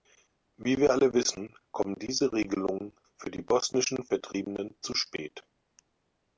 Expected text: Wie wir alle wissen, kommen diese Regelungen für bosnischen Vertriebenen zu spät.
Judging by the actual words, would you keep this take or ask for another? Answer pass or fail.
fail